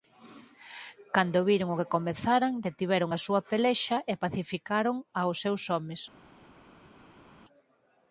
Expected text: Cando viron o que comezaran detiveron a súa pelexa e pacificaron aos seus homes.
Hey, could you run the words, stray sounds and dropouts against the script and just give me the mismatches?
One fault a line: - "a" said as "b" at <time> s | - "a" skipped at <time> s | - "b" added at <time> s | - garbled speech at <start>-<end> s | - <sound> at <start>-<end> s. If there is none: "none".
none